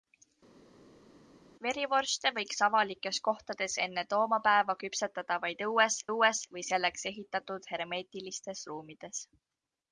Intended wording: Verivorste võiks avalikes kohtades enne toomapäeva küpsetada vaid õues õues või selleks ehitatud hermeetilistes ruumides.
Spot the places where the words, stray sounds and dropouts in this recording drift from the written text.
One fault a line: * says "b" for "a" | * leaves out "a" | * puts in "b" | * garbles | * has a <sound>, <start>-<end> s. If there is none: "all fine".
all fine